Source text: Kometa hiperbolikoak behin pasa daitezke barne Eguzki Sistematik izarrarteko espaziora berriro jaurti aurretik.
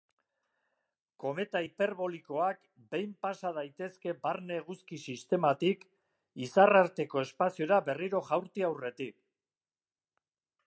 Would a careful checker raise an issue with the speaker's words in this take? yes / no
no